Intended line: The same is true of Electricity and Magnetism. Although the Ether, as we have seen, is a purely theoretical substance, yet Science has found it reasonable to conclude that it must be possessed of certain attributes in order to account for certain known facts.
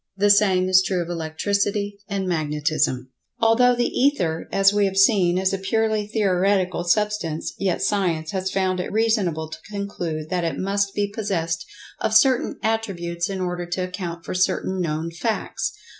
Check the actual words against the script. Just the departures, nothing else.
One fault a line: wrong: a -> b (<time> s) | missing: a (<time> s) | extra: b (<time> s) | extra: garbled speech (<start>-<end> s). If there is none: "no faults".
no faults